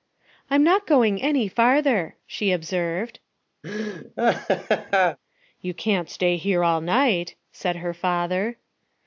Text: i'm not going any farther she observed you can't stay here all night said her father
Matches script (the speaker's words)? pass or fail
pass